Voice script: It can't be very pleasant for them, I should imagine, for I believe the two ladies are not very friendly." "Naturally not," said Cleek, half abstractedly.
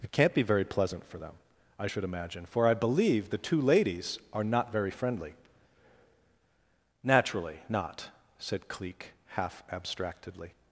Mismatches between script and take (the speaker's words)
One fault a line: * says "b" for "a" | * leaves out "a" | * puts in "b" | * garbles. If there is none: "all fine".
all fine